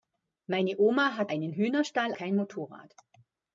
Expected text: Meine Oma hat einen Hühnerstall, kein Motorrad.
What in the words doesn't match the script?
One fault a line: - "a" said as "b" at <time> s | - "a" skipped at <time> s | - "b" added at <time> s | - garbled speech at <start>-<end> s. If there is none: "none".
none